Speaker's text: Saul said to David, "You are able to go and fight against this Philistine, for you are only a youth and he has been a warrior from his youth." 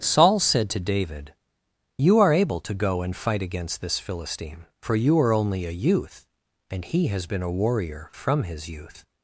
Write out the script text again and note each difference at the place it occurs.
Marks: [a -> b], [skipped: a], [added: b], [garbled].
Saul said to David, "You are able to go and fight against this Philistine, for you are only a youth and he has been a warrior from his youth."